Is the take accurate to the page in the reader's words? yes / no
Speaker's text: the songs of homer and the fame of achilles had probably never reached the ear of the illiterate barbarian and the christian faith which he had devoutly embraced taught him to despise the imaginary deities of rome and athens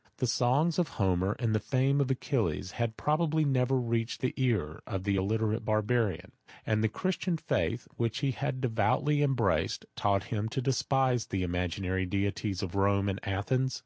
yes